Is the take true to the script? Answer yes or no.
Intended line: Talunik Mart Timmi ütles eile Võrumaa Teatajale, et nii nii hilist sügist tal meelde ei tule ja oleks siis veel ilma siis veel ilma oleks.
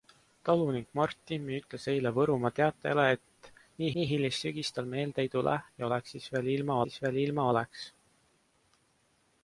yes